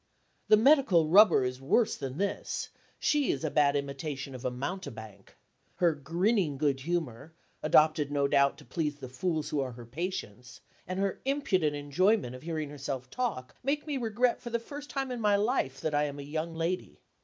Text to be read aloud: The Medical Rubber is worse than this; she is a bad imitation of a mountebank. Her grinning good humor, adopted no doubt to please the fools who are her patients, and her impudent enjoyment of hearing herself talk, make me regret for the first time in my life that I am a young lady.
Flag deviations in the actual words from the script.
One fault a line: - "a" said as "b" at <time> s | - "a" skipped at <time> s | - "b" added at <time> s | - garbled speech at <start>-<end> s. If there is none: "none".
none